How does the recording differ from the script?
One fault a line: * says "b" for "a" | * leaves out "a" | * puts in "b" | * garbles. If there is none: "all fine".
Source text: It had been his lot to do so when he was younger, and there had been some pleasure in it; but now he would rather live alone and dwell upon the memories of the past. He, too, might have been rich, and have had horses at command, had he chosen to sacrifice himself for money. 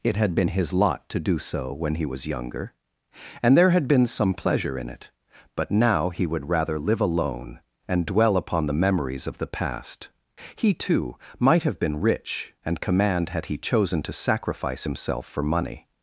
* leaves out "have had horses at"